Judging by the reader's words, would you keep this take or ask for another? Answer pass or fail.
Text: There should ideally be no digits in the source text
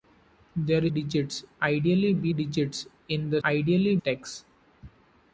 fail